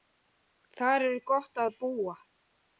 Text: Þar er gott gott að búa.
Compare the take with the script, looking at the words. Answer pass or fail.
fail